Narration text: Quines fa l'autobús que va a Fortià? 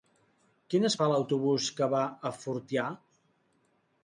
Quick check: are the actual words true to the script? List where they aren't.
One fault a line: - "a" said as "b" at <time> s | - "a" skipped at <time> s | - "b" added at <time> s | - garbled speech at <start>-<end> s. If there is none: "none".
none